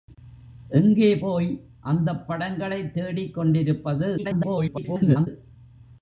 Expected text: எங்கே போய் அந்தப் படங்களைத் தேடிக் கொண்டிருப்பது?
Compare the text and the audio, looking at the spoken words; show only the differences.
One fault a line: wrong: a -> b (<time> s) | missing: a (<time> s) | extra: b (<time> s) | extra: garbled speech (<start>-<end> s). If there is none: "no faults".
extra: garbled speech (4.2-5.3 s)